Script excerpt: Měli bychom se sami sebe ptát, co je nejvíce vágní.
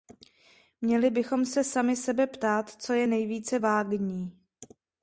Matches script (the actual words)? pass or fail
pass